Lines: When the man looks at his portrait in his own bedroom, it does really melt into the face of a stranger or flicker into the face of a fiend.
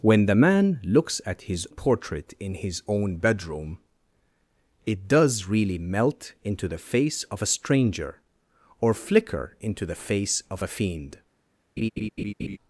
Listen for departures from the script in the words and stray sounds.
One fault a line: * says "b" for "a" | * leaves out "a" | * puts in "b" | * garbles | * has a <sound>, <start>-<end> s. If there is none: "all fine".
* has a laugh, 11.8-12.6 s